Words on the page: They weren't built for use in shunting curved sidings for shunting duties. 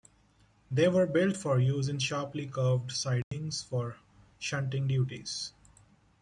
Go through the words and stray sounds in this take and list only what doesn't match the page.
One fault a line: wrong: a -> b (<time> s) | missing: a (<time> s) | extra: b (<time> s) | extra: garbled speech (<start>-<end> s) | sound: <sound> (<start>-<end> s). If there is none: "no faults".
wrong: weren't -> were (0.9 s)
wrong: shunting -> sharply (2.0 s)
sound: dropout (3.2-3.3 s)